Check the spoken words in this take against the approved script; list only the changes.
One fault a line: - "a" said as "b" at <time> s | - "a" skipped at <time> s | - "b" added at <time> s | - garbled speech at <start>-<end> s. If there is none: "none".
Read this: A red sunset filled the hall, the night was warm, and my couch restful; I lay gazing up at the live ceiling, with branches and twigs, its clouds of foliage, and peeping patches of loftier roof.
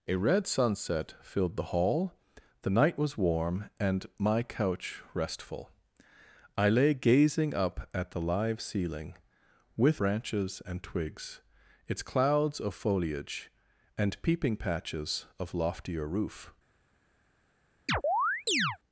none